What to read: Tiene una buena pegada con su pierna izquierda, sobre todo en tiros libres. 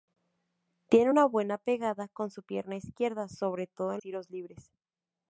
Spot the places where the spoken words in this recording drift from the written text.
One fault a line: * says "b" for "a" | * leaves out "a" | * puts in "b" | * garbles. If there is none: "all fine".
all fine